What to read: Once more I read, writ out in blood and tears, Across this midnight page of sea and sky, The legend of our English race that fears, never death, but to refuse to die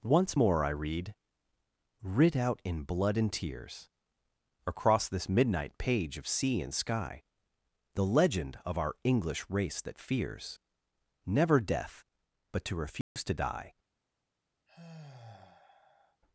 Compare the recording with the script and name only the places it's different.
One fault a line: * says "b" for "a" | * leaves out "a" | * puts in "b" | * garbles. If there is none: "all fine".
all fine